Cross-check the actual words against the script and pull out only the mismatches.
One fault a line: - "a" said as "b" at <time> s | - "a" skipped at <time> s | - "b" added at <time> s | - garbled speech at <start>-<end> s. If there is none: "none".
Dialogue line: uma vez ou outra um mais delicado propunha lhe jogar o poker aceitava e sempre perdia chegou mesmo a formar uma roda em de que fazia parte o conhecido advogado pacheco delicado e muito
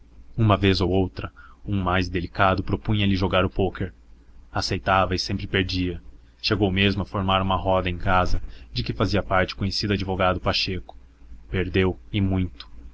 - "casa" added at 8.0 s
- "delicado" said as "perdeu" at 11.5 s